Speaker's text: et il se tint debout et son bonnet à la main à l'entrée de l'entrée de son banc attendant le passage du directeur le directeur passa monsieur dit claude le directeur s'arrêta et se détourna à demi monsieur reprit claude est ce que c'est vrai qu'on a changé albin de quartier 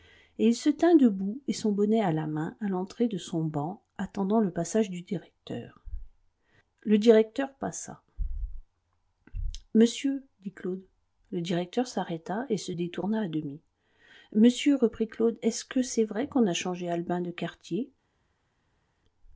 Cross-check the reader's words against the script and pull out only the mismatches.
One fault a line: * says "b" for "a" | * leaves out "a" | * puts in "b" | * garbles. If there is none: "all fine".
* leaves out "l'entrée de"